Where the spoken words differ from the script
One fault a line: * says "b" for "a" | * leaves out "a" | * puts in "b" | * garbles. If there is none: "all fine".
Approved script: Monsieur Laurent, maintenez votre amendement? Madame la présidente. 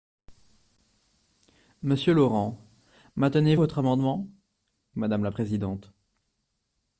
all fine